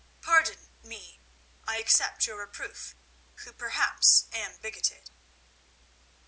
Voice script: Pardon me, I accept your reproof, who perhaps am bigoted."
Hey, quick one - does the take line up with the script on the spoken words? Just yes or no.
yes